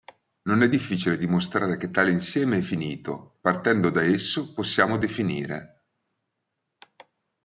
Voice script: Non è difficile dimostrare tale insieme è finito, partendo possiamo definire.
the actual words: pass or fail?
fail